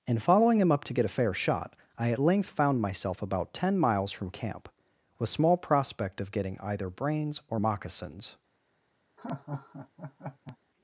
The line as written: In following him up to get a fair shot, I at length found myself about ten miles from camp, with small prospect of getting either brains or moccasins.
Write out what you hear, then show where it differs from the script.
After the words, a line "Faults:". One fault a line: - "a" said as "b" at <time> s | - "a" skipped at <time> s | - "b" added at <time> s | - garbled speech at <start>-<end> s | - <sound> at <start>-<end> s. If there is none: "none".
In following him up to get a fair shot, I at length found myself about ten miles from camp, with small prospect of getting either brains or moccasins.
Faults:
- laugh at 9.2-10.6 s